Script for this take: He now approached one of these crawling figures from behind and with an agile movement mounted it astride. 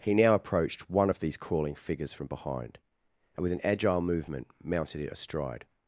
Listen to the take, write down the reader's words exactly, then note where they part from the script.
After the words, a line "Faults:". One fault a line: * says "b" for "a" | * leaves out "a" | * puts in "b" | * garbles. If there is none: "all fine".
He now approached one of these crawling figures from behind and with an agile movement mounted it astride.
Faults:
all fine